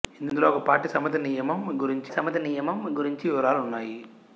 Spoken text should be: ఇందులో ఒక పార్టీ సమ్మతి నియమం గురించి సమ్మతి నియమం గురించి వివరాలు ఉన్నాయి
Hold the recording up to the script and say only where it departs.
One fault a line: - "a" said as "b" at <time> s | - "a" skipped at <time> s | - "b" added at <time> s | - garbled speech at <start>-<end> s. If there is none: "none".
none